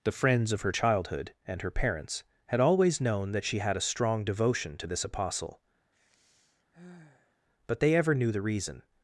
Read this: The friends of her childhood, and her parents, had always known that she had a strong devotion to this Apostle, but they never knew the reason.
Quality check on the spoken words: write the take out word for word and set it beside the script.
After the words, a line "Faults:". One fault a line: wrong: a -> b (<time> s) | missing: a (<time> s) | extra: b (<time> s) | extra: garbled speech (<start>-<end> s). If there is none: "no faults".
The friends of her childhood, and her parents, had always known that she had a strong devotion to this Apostle, but they ever knew the reason.
Faults:
wrong: never -> ever (8.0 s)